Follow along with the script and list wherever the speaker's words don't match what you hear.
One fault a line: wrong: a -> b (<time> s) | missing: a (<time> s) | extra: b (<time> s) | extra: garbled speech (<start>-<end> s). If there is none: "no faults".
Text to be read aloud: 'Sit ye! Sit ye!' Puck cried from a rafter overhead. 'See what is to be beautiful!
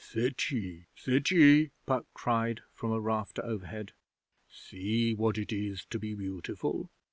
extra: it (5.4 s)